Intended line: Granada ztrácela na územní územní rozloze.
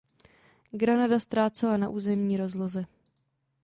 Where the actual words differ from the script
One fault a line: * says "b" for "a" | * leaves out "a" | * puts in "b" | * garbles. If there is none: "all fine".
* leaves out "územní"